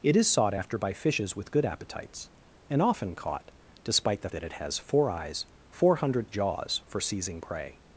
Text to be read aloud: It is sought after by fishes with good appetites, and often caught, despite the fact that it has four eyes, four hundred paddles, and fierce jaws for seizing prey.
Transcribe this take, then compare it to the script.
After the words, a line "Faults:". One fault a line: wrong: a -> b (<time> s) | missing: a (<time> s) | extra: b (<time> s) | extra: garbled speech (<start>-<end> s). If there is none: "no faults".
It is sought after by fishes with good appetites, and often caught, despite the that it has four eyes, four hundred jaws for seizing prey.
Faults:
missing: fact (4.3 s)
missing: paddles and fierce (6.3 s)